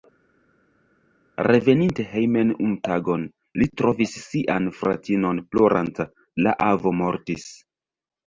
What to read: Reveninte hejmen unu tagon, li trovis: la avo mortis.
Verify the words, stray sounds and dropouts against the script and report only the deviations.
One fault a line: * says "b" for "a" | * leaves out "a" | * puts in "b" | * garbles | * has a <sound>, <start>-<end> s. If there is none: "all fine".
* puts in "sian fratinon ploranta"